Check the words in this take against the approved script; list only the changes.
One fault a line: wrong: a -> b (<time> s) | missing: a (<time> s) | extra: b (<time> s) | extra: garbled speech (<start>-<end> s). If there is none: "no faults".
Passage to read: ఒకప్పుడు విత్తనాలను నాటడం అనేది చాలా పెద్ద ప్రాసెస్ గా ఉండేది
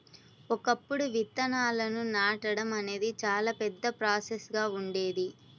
no faults